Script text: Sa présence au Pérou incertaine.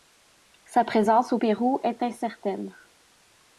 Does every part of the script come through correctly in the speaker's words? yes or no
no